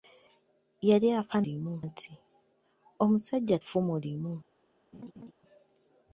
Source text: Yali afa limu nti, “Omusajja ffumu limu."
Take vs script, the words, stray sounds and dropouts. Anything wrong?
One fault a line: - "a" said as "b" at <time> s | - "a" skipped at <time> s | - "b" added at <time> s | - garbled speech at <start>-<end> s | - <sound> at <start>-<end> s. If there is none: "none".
- laugh at 4.9-5.3 s